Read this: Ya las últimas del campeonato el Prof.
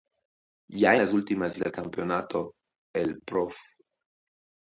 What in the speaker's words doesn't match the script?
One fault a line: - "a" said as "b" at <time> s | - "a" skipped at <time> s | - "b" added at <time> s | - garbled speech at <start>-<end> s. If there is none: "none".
none